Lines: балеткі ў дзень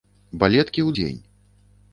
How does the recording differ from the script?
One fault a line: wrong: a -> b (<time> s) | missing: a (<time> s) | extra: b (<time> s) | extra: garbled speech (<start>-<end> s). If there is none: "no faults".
no faults